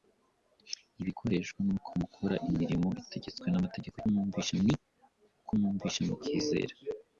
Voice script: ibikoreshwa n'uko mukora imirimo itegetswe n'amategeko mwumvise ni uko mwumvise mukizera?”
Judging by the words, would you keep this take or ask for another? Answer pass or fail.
pass